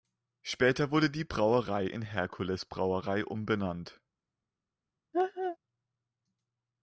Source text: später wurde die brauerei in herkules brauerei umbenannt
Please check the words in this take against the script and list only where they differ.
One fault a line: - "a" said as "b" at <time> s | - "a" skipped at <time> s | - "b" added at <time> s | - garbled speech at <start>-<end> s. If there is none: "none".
none